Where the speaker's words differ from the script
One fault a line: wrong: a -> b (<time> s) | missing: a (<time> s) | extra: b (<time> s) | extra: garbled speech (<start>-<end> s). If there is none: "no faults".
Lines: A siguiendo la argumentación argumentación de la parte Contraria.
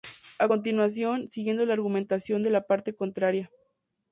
extra: continuación (0.4 s)
missing: argumentación (2.4 s)